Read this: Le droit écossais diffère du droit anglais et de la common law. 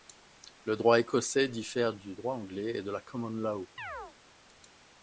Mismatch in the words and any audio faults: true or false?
true